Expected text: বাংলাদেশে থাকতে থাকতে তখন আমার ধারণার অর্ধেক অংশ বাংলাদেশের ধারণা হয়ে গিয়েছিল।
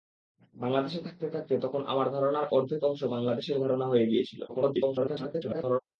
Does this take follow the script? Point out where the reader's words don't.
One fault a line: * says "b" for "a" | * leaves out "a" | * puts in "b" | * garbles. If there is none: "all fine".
* garbles